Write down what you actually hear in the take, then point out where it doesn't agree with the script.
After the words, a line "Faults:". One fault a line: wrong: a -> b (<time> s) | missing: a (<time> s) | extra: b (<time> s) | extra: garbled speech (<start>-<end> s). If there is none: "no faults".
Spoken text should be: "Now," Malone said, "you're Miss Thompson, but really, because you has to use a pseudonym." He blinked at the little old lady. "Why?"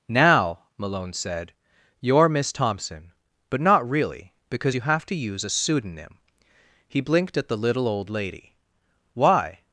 "Now," Malone said, "you're Miss Thompson, but not really, because you have to use a pseudonym." He blinked at the little old lady. "Why?"
Faults:
extra: not (3.6 s)
wrong: has -> have (4.8 s)